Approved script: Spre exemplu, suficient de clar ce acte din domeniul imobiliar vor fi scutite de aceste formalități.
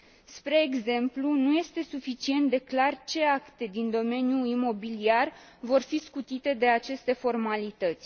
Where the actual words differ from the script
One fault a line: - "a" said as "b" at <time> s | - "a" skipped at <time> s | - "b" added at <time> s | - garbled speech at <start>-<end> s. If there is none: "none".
- "nu este" added at 1.3 s